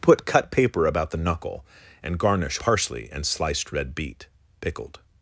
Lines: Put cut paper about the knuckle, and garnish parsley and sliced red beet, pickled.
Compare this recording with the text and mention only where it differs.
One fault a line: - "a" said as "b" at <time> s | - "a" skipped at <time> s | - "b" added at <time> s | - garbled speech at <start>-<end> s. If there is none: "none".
none